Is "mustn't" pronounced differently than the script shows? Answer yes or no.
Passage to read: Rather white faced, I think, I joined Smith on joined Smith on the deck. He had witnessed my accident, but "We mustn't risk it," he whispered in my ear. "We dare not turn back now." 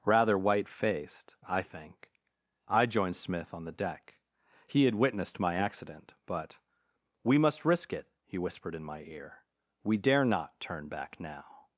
yes